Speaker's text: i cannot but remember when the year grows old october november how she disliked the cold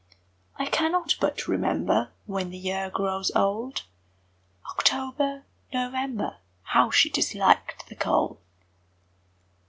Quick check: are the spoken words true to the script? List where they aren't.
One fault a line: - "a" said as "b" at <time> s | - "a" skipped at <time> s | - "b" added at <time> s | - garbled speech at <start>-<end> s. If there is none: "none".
none